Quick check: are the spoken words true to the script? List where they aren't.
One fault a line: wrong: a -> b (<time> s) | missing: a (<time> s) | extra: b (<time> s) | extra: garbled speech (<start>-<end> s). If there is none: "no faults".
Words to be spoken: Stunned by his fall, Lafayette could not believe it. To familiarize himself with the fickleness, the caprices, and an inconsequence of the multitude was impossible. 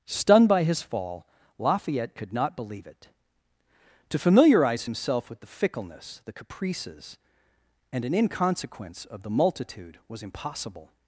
no faults